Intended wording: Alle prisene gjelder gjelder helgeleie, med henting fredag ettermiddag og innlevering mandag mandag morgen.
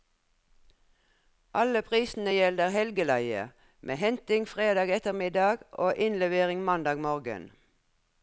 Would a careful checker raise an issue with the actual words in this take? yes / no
yes